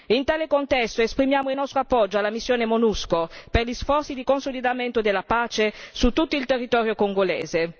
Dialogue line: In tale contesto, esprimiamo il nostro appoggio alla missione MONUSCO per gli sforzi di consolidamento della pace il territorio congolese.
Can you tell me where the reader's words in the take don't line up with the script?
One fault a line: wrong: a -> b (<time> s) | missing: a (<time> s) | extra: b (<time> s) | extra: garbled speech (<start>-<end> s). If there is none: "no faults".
extra: su tutto (5.9 s)